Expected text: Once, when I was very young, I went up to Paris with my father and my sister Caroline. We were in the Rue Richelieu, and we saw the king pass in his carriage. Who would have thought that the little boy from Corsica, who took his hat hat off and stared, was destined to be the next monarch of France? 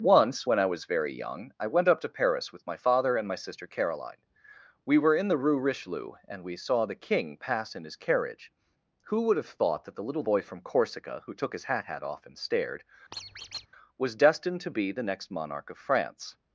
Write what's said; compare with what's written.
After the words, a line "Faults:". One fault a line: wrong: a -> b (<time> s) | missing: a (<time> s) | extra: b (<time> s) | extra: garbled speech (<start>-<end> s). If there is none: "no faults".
Once, when I was very young, I went up to Paris with my father and my sister Caroline. We were in the Rue Richelieu, and we saw the king pass in his carriage. Who would have thought that the little boy from Corsica, who took his hat hat off and stared, was destined to be the next monarch of France?
Faults:
no faults